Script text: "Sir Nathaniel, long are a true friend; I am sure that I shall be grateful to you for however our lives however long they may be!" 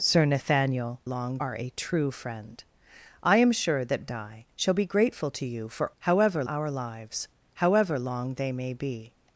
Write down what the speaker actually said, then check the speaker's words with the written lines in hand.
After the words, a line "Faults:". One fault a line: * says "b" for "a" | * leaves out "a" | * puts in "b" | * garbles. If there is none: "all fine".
"Sir Nathaniel, long are a true friend; I am sure that I shall be grateful to you for however our lives however long they may be!"
Faults:
all fine